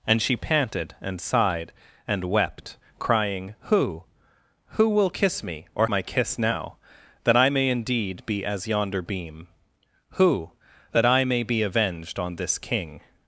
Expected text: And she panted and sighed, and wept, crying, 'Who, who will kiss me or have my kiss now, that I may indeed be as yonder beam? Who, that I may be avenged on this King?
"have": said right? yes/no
no